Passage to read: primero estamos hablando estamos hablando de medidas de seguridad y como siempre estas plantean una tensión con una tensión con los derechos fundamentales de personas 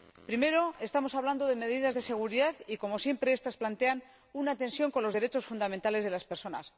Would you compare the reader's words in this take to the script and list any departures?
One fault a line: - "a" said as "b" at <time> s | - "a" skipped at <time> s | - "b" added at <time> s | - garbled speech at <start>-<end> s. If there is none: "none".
- "estamos hablando" skipped at 1.5 s
- "una tensión con" skipped at 5.0 s
- "las" added at 6.1 s